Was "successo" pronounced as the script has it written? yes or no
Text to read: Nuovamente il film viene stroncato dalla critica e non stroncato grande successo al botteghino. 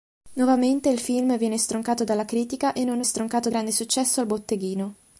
yes